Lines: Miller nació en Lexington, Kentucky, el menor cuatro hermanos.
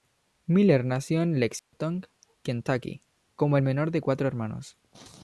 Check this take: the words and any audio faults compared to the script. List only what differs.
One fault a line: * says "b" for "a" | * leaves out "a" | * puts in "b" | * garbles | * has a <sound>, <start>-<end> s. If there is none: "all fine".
* has a dropout, 1.6-1.7 s
* puts in "como"
* puts in "de"